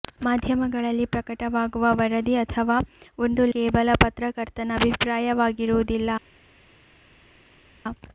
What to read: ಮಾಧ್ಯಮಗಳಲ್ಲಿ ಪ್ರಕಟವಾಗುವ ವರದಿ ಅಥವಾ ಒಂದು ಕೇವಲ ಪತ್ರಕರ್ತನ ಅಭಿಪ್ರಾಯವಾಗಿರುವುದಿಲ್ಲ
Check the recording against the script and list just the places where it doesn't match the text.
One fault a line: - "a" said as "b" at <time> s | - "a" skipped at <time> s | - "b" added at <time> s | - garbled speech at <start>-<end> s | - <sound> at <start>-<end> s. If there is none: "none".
none